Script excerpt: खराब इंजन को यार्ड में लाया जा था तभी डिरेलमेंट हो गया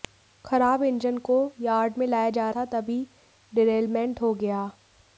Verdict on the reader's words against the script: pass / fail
pass